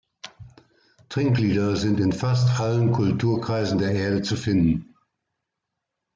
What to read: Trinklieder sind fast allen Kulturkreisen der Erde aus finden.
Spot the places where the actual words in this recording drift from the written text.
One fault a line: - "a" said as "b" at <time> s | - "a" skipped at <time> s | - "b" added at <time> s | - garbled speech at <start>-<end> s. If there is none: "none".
- "in" added at 2.0 s
- "aus" said as "zu" at 4.2 s